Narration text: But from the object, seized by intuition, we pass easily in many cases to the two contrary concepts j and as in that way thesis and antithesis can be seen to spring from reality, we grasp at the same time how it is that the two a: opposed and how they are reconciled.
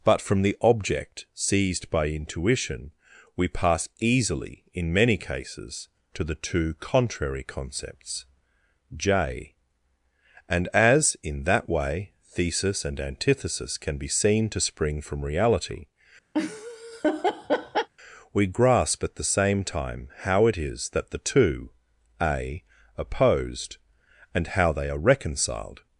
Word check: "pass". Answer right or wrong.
right